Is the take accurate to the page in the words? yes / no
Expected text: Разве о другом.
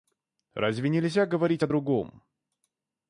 no